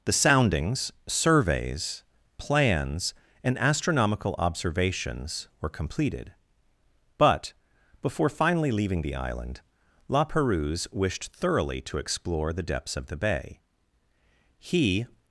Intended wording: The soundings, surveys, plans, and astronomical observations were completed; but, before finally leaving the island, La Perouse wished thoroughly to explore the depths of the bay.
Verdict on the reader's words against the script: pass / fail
fail